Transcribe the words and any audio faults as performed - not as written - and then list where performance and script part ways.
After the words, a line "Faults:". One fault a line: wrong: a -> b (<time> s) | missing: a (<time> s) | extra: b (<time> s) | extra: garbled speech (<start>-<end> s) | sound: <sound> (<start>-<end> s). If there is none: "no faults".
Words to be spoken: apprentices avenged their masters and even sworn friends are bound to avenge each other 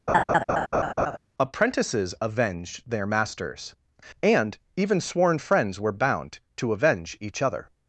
apprentices avenged their masters and even sworn friends were bound to avenge each other
Faults:
sound: laugh (0.1-1.2 s)
wrong: are -> were (5.8 s)